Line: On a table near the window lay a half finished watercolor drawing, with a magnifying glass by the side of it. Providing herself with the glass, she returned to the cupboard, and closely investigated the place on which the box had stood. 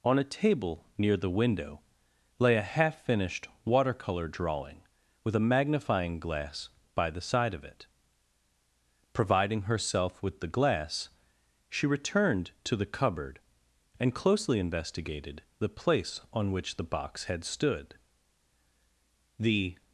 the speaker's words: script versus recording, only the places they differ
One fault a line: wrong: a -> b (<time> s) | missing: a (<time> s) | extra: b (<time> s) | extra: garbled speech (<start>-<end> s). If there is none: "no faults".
extra: The (19.4 s)